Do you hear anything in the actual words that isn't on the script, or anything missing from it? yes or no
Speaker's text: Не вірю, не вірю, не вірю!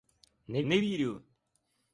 yes